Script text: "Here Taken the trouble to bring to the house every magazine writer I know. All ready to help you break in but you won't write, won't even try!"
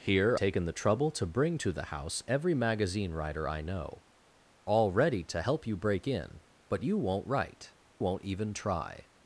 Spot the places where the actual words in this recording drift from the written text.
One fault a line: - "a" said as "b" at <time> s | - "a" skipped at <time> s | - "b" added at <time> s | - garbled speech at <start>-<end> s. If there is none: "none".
none